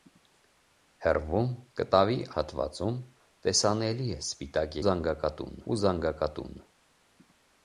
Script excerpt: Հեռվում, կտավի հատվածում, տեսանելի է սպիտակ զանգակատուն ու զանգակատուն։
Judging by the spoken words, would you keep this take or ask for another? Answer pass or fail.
pass